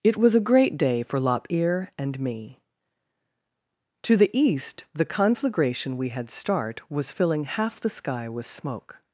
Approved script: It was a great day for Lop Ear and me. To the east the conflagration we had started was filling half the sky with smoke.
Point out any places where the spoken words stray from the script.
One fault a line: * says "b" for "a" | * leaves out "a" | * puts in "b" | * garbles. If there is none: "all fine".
* says "start" for "started"